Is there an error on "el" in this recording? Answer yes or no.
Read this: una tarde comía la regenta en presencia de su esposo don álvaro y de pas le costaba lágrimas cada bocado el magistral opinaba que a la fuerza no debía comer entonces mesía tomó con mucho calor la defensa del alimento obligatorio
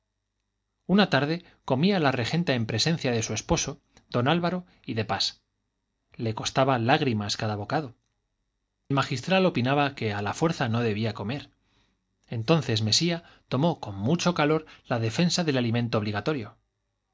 yes